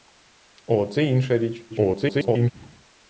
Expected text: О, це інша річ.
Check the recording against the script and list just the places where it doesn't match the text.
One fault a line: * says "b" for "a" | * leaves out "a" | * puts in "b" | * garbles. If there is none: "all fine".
* garbles